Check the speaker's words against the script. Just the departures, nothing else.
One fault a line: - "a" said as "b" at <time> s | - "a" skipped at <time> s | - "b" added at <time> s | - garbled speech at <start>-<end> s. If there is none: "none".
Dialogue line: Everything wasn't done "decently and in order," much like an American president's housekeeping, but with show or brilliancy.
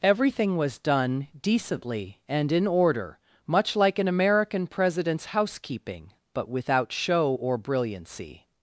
- "wasn't" said as "was" at 0.6 s
- "with" said as "without" at 6.5 s